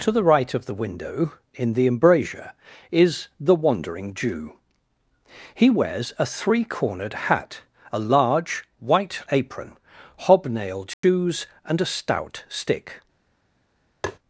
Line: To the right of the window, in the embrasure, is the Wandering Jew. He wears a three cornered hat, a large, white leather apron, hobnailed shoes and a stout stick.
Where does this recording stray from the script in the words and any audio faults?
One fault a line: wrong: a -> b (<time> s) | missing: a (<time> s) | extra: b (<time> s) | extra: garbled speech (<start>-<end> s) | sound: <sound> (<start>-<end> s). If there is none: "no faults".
missing: leather (9.2 s)
sound: dropout (10.9-11.0 s)
sound: tap (14.0-14.2 s)